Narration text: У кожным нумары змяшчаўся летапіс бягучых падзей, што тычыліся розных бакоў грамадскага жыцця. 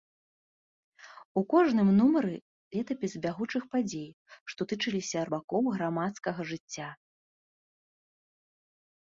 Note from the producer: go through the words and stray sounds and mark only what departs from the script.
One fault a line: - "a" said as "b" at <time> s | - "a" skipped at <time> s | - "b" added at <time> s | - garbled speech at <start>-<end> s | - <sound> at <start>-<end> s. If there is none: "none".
- "змяшчаўся" skipped at 2.3 s
- "розных" skipped at 5.2 s